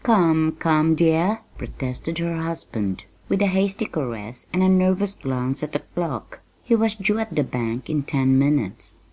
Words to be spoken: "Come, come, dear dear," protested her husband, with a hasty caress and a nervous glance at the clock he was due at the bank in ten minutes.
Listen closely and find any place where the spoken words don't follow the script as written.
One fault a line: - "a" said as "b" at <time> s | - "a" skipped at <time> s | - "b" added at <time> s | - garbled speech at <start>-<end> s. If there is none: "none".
- "dear" skipped at 1.4 s